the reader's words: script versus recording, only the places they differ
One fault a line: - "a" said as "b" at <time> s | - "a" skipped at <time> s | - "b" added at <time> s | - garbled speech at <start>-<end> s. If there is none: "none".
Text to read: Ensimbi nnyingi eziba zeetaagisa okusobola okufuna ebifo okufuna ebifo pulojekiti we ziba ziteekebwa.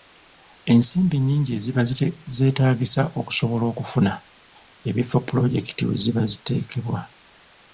- "okufuna ebifo" skipped at 5.2 s